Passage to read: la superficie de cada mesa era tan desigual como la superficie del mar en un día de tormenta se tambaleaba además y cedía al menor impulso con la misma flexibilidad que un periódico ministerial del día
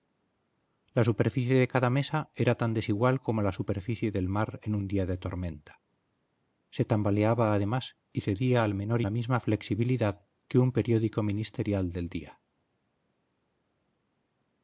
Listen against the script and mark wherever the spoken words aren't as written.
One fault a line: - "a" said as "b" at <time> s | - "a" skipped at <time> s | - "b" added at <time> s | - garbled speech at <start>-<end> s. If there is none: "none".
- "impulso con" skipped at 9.0 s